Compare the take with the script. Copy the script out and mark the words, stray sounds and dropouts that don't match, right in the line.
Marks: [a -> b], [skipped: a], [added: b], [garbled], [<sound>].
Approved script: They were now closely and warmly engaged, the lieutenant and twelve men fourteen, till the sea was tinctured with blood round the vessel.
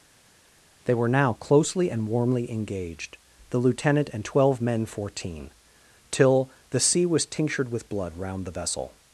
They were now closely and warmly engaged, the lieutenant and twelve men fourteen, till the sea was tinctured with blood round the vessel.